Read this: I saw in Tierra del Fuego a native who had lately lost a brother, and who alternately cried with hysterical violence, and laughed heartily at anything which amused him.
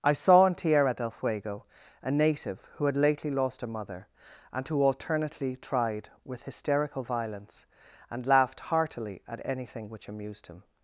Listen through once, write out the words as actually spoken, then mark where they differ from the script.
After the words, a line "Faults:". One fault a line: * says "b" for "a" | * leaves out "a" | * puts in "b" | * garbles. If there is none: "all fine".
I saw in Tierra del Fuego a native who had lately lost a mother, and who alternately tried with hysterical violence, and laughed heartily at anything which amused him.
Faults:
* says "mother" for "brother"
* says "tried" for "cried"